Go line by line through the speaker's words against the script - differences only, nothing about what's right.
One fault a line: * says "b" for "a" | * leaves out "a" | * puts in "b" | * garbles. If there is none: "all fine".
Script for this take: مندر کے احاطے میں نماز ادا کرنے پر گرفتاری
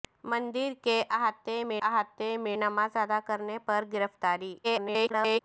* puts in "احاطے میں"
* garbles